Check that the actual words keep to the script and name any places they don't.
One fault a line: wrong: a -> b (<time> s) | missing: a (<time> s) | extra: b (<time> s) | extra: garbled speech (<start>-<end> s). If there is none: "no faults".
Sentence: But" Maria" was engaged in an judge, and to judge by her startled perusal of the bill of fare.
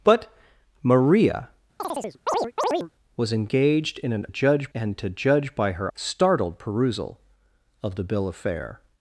no faults